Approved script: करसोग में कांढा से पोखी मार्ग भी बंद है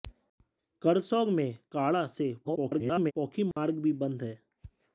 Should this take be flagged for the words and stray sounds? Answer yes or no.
yes